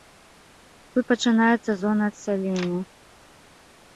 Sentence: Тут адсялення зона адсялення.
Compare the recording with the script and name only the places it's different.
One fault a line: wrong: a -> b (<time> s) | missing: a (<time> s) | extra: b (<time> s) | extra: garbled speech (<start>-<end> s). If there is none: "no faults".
wrong: адсялення -> пачынаецца (1.1 s)